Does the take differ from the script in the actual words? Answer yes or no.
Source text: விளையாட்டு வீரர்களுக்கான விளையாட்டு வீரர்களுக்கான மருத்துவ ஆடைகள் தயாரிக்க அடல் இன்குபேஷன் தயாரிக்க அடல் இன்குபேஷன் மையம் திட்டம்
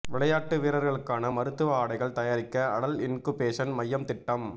yes